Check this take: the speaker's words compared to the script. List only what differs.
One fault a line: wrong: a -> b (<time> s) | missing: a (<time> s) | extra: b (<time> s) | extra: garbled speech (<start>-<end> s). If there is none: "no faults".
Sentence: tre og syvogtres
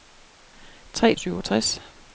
no faults